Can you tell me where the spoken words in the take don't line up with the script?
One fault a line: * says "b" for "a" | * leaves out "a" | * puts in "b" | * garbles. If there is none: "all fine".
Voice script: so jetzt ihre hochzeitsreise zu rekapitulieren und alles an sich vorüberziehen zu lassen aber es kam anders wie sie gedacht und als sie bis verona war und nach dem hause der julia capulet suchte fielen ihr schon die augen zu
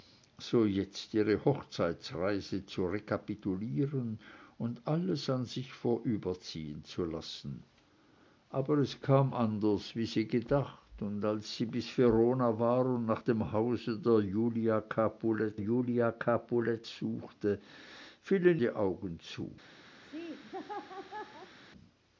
* puts in "julia capulet"
* leaves out "ihr schon"